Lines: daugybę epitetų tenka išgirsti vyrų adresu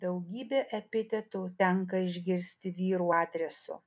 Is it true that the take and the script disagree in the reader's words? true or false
false